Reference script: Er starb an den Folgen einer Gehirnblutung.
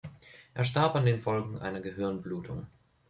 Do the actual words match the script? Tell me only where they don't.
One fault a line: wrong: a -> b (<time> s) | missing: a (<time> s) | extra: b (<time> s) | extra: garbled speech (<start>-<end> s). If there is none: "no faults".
no faults